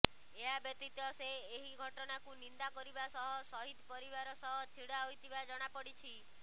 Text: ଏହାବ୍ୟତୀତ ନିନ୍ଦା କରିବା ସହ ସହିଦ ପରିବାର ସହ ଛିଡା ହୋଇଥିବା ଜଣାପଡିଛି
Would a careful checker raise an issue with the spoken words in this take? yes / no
yes